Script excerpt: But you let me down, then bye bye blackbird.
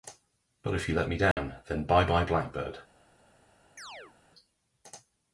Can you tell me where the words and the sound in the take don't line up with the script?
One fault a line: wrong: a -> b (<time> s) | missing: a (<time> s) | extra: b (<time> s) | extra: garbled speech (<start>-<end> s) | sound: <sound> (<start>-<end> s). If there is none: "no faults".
extra: if (0.7 s)
sound: dropout (1.3-1.4 s)
sound: chirp (3.8-4.1 s)